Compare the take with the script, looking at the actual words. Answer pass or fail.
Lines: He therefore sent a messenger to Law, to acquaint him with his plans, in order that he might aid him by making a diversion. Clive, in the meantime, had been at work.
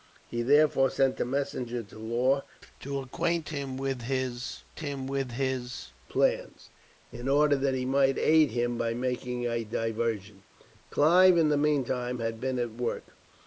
fail